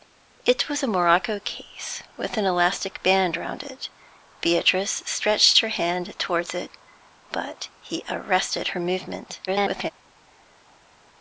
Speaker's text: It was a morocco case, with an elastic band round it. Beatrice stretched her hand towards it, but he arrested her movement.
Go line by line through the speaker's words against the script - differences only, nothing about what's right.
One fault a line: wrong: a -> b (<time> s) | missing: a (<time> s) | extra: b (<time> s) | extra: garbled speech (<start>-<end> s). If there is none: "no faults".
extra: garbled speech (9.5-9.9 s)